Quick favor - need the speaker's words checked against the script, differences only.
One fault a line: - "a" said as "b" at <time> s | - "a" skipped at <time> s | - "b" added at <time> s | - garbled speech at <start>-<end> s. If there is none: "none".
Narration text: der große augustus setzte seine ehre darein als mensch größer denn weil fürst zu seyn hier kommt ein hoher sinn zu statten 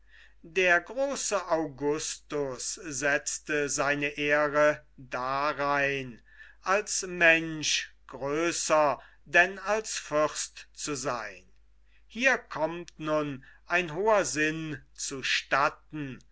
- "weil" said as "als" at 9.6 s
- "nun" added at 13.0 s